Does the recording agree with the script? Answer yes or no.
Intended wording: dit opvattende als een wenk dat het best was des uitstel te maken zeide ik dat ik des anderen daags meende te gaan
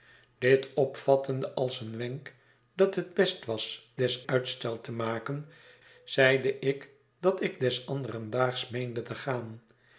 yes